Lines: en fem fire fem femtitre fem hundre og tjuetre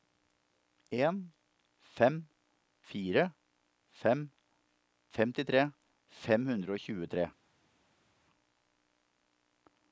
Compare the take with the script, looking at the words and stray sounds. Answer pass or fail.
pass